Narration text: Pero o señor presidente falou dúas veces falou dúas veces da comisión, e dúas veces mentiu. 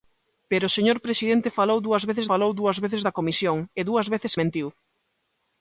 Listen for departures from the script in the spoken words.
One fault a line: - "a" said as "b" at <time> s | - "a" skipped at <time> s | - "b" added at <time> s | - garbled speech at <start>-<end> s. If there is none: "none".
none